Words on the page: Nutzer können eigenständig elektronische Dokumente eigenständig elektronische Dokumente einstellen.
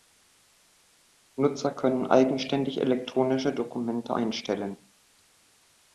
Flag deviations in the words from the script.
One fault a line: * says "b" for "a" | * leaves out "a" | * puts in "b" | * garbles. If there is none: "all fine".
* leaves out "eigenständig elektronische Dokumente"